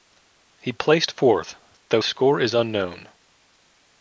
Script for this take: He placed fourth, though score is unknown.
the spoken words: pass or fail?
pass